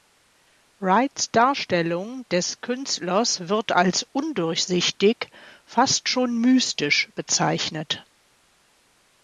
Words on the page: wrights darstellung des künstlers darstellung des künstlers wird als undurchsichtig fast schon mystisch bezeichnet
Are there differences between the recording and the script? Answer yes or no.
yes